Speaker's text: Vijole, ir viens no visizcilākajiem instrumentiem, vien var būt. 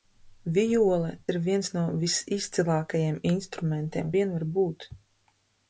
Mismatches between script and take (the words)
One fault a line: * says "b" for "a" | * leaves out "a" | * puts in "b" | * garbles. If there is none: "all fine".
all fine